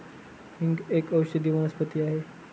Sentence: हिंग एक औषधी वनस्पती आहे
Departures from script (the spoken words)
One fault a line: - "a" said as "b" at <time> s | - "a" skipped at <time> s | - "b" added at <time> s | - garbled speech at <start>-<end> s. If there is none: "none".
none